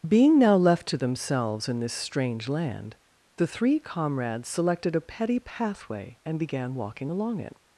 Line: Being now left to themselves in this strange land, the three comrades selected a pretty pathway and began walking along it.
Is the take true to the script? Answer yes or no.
no